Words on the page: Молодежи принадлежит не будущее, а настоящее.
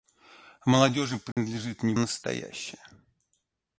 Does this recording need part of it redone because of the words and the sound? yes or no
yes